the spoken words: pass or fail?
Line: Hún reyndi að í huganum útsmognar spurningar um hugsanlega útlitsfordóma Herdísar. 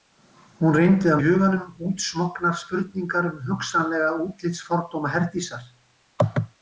pass